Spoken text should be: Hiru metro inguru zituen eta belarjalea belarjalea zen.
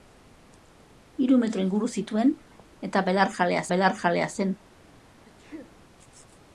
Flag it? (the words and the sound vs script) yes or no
yes